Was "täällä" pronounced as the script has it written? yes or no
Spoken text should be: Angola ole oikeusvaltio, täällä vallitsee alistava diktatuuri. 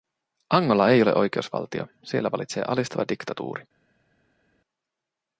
no